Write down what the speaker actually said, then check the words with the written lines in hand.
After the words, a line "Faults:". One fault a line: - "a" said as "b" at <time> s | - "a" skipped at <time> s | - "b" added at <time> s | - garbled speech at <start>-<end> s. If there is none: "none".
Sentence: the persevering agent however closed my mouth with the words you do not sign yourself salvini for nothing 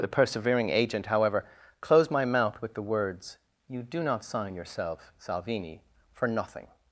the persevering agent however closed my mouth with the words you do not sign yourself salvini for nothing
Faults:
none